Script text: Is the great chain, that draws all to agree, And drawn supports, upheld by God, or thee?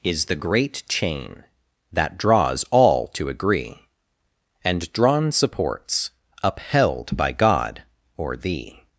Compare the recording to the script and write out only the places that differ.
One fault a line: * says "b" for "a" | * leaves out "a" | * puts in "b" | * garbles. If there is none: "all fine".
all fine